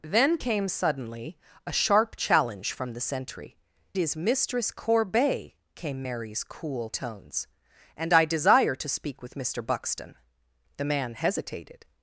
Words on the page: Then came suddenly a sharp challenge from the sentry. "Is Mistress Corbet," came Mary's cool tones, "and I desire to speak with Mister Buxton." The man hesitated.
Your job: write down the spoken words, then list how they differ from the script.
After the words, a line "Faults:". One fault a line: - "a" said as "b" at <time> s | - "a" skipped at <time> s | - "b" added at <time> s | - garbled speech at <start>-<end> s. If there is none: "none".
Then came suddenly a sharp challenge from the sentry. "Is Mistress Corbet," came Mary's cool tones, "and I desire to speak with Mister Buxton." The man hesitated.
Faults:
none